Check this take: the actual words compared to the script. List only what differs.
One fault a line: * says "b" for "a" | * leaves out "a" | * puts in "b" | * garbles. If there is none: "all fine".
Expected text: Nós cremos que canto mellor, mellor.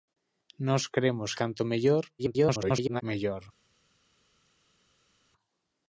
* leaves out "que"
* garbles